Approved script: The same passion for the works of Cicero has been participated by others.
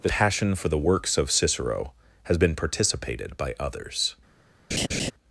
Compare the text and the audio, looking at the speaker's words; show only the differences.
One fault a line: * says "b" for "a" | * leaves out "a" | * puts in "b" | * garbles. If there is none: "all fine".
* leaves out "same"